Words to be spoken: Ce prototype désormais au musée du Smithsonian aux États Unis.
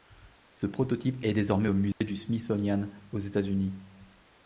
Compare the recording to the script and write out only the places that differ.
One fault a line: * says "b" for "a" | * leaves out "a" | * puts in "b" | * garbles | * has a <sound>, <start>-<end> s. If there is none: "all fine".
* puts in "est"
* has a dropout, 1.9-2.0 s